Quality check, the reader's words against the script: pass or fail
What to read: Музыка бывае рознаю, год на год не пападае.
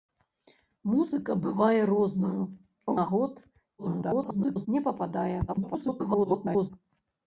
fail